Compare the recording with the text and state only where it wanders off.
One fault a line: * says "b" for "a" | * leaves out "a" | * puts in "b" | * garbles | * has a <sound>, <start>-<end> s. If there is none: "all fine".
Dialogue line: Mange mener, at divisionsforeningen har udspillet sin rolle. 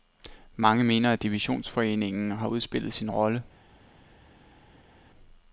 all fine